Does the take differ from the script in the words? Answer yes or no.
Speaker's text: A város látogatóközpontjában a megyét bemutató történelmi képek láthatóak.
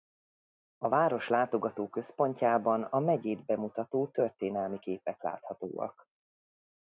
no